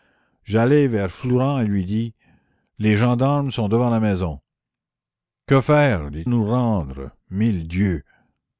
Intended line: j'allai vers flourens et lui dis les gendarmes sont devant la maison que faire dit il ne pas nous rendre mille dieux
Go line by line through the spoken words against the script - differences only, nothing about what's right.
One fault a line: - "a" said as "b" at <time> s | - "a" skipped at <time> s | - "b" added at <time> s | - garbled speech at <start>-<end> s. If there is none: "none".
- "il ne pas" skipped at 6.3 s